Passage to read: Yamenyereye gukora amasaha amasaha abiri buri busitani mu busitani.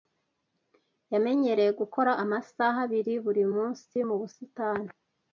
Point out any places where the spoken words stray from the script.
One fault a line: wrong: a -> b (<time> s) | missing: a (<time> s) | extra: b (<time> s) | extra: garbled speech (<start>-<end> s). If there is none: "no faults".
missing: amasaha (2.8 s)
wrong: busitani -> munsi (3.5 s)